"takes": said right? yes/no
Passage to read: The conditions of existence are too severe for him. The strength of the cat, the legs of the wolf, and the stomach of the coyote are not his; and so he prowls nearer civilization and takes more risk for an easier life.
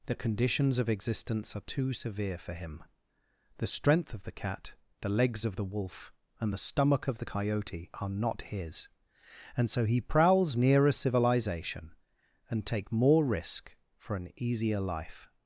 no